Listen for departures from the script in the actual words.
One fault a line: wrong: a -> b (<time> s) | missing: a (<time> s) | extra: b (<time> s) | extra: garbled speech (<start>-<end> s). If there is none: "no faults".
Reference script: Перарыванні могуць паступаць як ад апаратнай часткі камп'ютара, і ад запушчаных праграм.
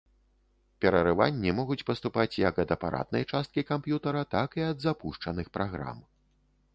extra: так (4.4 s)